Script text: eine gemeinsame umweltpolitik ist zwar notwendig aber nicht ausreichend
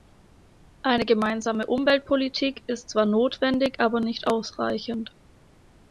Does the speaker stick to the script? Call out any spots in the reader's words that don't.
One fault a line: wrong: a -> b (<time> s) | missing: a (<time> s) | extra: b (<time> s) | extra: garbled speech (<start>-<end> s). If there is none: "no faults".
no faults